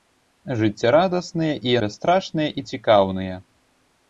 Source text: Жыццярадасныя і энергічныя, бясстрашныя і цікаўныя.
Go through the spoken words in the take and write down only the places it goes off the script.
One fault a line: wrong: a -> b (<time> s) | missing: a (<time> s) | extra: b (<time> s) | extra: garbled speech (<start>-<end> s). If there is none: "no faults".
missing: энергічныя (1.8 s)